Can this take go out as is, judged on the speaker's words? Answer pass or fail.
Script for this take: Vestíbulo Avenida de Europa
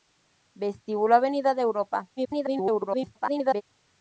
fail